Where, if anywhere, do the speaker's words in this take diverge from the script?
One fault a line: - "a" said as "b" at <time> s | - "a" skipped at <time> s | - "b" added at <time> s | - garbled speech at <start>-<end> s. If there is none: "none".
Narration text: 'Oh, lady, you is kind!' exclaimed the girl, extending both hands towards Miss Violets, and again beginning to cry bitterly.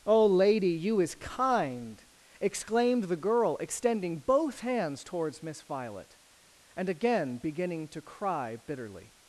- "Violets" said as "Violet" at 5.6 s